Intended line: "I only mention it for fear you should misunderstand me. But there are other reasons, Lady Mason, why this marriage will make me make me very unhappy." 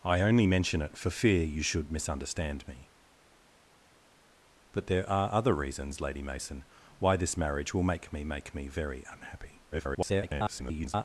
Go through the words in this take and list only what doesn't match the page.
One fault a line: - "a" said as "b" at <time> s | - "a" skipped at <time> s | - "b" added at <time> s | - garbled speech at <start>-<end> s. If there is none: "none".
- garbled speech at 9.7-11.0 s